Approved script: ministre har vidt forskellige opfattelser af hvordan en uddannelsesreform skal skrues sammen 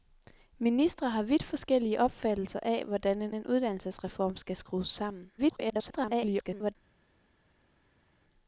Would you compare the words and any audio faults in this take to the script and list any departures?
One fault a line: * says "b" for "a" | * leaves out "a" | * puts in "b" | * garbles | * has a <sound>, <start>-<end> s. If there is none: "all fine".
* puts in "en"
* garbles